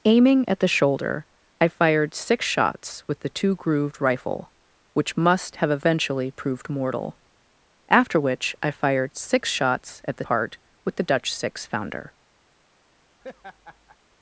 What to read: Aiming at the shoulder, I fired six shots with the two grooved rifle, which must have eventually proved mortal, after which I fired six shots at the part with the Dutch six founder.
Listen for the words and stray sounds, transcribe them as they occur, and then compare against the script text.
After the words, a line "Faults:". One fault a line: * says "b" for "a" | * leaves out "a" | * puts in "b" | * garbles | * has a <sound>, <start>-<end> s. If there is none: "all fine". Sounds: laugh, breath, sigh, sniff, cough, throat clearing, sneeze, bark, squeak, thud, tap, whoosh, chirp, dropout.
Aiming at the shoulder, I fired six shots with the two grooved rifle, which must have eventually proved mortal, after which I fired six shots at the part with the Dutch six founder.
Faults:
* has a laugh, 13.2-14.0 s